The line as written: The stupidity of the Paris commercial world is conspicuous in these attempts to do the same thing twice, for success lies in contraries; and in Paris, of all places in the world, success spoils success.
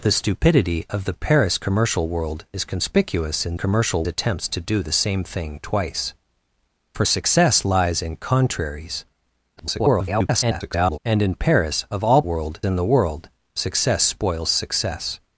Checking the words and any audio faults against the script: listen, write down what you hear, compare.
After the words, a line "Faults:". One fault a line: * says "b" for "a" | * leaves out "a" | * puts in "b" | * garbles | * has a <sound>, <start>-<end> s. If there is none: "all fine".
The stupidity of the Paris commercial world is conspicuous in commercial attempts to do the same thing twice, for success lies in contraries; [garbled] and in Paris, of all world in the world, success spoils success.
Faults:
* says "commercial" for "these"
* garbles
* says "world" for "places"